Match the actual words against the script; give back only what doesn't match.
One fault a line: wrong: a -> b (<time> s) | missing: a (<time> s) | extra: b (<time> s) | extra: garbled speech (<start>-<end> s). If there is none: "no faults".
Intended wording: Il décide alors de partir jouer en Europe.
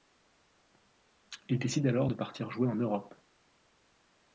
no faults